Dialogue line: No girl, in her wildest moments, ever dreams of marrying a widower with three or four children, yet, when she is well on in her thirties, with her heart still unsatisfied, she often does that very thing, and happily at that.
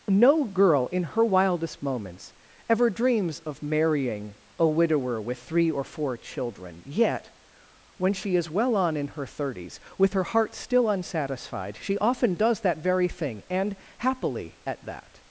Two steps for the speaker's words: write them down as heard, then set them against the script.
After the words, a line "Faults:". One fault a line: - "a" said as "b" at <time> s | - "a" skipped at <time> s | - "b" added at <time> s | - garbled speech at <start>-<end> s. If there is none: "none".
No girl, in her wildest moments, ever dreams of marrying a widower with three or four children, yet, when she is well on in her thirties, with her heart still unsatisfied, she often does that very thing, and happily at that.
Faults:
none